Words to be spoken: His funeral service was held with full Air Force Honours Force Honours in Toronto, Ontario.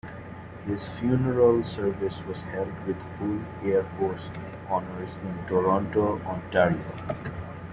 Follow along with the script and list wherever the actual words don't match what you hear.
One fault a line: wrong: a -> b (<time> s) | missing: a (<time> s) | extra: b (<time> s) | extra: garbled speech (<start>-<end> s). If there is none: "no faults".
missing: Force Honours (5.1 s)